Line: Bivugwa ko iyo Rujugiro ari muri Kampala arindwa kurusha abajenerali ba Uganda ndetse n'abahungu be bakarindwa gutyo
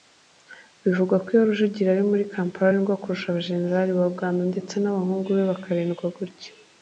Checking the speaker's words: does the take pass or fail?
pass